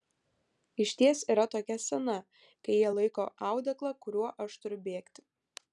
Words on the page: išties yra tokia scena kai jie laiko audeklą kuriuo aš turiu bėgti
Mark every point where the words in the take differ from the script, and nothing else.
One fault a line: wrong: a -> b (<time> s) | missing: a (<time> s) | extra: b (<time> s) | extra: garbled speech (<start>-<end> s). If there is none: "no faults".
no faults